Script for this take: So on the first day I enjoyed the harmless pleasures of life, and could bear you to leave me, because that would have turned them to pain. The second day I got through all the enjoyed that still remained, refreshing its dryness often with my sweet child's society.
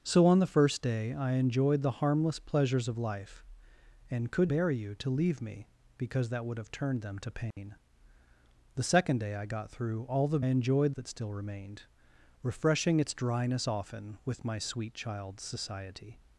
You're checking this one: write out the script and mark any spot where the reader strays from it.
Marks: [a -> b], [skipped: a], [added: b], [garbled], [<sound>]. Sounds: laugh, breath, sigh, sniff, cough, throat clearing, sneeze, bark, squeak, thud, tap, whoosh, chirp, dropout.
So on the first day I enjoyed the harmless pleasures of life, and could bear you to leave me, because that would have turned them to pain. [dropout] The second day I got through all the enjoyed that still remained, refreshing its dryness often with my sweet child's society.